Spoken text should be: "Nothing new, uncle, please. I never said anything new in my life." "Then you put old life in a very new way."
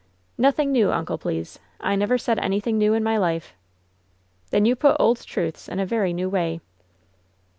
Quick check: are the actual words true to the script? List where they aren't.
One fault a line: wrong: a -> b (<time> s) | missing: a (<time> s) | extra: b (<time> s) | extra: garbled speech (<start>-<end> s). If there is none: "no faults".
wrong: life -> truths (5.2 s)